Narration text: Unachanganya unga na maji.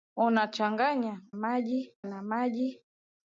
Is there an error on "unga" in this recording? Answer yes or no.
yes